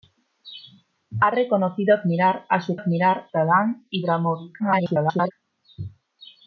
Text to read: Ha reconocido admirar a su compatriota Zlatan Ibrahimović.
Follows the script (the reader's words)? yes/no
no